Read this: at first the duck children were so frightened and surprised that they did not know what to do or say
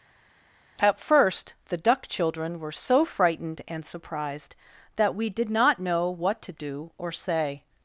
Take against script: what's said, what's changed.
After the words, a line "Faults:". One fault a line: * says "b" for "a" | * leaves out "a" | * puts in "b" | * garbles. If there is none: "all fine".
at first the duck children were so frightened and surprised that we did not know what to do or say
Faults:
* says "we" for "they"